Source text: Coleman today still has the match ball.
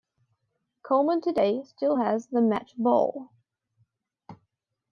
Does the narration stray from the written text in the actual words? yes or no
no